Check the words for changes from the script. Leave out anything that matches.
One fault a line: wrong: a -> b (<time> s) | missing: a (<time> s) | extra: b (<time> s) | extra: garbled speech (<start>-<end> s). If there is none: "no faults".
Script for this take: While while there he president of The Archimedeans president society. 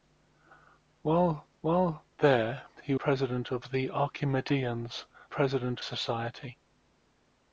no faults